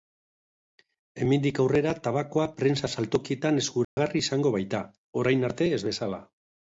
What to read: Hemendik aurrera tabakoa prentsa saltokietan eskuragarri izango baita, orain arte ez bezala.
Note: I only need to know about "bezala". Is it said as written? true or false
true